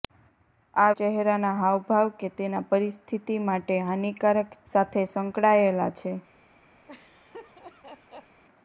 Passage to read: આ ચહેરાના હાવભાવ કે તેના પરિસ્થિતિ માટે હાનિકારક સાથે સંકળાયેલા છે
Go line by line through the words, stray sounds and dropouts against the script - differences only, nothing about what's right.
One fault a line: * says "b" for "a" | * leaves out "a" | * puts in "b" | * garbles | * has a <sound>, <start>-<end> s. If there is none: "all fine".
* has a laugh, 6.9-8.4 s